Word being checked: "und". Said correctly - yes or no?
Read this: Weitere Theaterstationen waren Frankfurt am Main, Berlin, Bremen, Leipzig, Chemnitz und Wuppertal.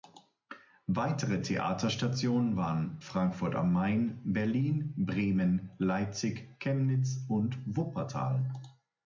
yes